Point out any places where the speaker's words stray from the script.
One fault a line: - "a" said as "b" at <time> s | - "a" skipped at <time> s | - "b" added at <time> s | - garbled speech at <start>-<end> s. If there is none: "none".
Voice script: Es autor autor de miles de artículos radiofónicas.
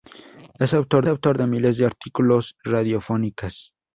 none